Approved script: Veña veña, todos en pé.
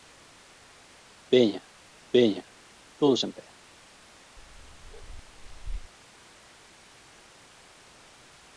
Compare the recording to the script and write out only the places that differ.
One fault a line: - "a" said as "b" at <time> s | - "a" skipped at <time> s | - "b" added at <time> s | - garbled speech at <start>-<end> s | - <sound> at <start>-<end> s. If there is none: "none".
- bark at 4.4-5.9 s